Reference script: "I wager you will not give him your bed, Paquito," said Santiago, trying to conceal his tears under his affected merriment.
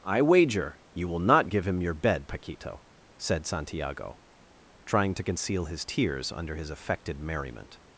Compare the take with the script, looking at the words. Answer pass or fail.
pass